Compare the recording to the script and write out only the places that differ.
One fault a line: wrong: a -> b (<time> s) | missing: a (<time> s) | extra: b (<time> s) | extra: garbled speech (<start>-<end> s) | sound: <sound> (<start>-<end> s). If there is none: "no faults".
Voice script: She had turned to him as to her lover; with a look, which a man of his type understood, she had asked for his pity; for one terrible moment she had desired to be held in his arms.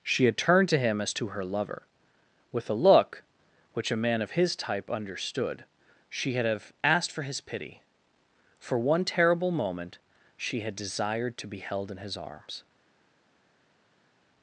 extra: have (6.5 s)